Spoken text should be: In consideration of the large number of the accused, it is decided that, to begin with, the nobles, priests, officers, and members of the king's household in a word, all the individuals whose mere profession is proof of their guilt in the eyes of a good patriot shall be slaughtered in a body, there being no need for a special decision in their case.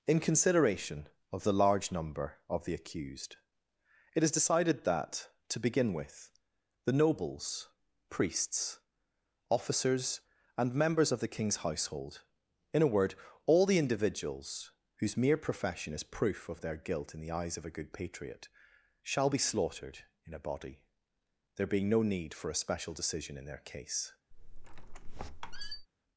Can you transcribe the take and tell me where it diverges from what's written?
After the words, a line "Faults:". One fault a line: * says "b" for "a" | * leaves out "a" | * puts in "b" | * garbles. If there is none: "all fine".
In consideration of the large number of the accused, it is decided that, to begin with, the nobles, priests, officers, and members of the king's household in a word, all the individuals whose mere profession is proof of their guilt in the eyes of a good patriot shall be slaughtered in a body, there being no need for a special decision in their case.
Faults:
all fine